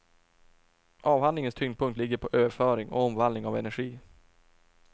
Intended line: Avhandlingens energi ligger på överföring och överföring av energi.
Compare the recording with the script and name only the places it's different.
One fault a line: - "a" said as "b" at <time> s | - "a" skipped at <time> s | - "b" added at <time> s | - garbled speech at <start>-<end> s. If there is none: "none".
- "energi" said as "tyngdpunkt" at 1.5 s
- "överföring" said as "omvandling" at 3.0 s